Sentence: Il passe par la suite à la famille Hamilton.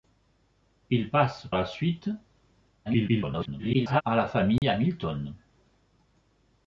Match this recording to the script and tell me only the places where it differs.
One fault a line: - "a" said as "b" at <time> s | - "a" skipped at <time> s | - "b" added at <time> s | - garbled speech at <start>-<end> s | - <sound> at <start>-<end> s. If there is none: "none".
- "par" skipped at 1.4 s
- garbled speech at 2.9-4.0 s
- dropout at 4.6-4.6 s